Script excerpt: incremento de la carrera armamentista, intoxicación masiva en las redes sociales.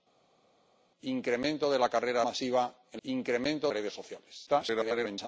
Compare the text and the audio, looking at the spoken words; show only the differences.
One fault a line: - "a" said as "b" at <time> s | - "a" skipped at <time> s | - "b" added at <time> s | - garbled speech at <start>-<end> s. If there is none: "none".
- "armamentista intoxicación" skipped at 2.2 s
- "las" said as "incremento" at 3.0 s
- garbled speech at 4.5-5.3 s